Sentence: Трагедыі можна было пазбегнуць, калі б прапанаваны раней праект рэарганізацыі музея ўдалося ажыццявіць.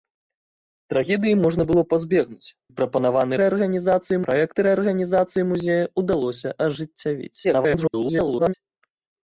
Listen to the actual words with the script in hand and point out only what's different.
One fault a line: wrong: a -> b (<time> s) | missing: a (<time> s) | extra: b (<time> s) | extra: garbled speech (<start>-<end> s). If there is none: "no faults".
missing: калі (2.5 s)
wrong: раней -> рэарганізацыі (3.4 s)
extra: garbled speech (7.4-8.5 s)